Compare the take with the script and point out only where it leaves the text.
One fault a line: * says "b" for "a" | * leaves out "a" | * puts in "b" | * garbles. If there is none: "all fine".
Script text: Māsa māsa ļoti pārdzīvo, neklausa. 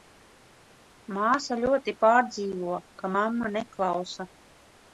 * leaves out "māsa"
* puts in "ka mamma"